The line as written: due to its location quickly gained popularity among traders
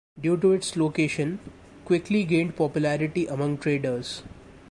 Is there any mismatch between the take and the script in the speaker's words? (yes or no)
no